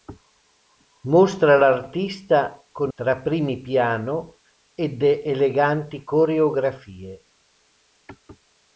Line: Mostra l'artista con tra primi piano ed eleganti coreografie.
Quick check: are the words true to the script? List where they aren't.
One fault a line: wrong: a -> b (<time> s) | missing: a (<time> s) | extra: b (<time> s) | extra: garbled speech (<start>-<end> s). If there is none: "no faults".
no faults